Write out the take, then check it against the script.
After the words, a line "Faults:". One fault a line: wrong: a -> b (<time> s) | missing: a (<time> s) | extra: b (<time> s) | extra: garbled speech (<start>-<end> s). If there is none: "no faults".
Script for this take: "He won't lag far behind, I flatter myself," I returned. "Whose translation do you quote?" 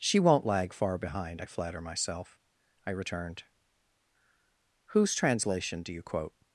"She won't lag far behind, I flatter myself," I returned. "Whose translation do you quote?"
Faults:
wrong: He -> She (0.0 s)